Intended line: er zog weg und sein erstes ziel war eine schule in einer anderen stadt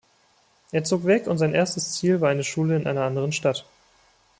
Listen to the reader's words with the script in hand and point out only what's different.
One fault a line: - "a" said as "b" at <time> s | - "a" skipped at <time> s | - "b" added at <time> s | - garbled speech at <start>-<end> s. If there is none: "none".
none